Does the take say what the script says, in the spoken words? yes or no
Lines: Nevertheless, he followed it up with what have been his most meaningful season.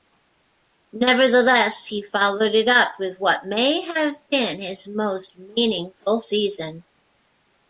no